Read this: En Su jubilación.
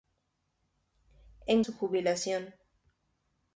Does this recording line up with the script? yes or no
yes